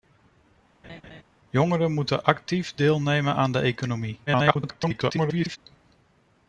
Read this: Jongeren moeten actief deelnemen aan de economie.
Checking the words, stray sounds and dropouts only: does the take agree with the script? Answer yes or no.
no